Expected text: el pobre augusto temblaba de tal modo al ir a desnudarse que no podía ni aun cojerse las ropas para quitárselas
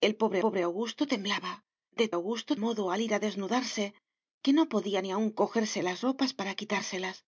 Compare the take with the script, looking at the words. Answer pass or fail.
fail